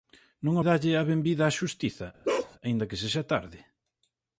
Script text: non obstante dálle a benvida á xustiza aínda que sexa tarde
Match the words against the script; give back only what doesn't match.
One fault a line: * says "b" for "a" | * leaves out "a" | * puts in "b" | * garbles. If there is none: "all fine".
* leaves out "obstante"